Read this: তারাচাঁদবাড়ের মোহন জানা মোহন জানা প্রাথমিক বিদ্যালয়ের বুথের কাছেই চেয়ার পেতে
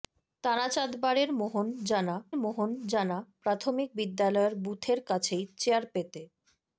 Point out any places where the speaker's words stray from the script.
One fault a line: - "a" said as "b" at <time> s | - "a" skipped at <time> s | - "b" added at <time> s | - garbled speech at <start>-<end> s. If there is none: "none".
none